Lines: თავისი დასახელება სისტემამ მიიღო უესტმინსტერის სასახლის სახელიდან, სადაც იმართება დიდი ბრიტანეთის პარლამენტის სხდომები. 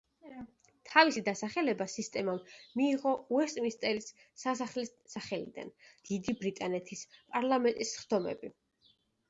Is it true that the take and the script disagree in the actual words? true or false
true